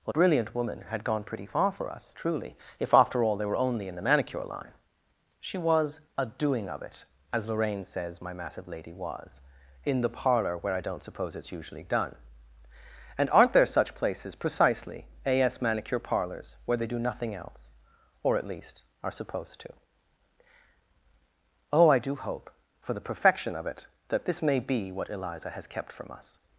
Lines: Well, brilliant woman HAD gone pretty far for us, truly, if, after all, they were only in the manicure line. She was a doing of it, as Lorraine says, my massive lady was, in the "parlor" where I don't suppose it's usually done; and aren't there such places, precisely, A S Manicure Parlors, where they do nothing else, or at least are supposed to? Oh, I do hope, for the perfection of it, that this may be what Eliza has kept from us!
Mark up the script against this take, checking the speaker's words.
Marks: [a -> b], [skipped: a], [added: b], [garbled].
Well, brilliant woman HAD gone pretty far for us, truly, if, after all, they were only in the manicure line. She was a doing of it, as Lorraine says, my massive lady was, in the "parlor" where I don't suppose it's usually done; and aren't there such places, precisely, A S Manicure Parlors, where they do nothing else, or at least are supposed to? Oh, I do hope, for the perfection of it, that this may be what Eliza has kept from us!